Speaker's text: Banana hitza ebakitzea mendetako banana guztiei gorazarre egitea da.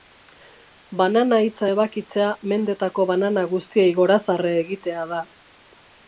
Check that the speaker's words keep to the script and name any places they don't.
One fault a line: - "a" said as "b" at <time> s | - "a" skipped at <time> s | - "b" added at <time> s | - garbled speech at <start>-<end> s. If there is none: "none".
none